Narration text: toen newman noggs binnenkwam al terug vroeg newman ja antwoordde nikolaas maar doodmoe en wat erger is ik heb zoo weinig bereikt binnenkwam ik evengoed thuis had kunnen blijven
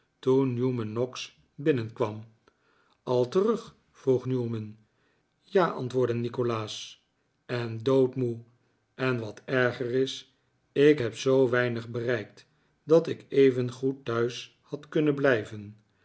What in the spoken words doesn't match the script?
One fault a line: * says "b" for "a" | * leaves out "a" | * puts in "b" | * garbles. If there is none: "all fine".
* says "en" for "maar"
* says "dat" for "binnenkwam"